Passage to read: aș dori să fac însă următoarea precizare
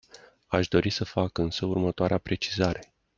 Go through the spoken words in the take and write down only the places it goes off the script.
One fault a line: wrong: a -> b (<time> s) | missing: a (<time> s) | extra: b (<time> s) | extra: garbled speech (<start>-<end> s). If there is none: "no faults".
no faults